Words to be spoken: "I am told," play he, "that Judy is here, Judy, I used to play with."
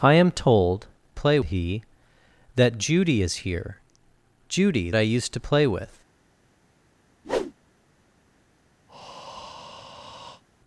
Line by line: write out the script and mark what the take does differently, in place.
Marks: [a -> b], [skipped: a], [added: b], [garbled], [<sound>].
"I am told," play he, "that Judy is here, Judy, I used to play with." [whoosh] [breath]